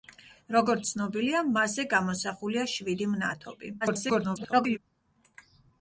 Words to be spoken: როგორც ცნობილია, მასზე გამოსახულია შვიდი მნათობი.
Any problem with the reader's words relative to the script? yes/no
yes